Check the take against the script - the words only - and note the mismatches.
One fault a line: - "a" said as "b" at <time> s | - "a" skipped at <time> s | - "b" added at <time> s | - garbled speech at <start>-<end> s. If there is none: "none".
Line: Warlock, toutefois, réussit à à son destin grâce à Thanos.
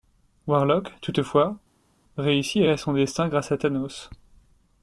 none